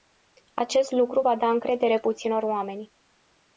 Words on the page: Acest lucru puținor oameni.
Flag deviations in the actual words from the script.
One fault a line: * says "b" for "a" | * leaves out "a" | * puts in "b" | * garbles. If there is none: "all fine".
* puts in "va da încredere"